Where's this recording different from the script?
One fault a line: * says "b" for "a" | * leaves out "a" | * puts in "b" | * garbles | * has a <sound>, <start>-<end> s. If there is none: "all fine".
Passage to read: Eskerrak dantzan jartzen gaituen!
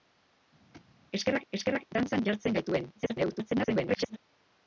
* has a thud, 0.7-0.9 s
* puts in "eskerrak"
* garbles